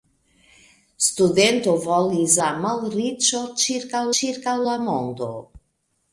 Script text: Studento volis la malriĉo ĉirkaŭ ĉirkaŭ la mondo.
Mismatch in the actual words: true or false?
false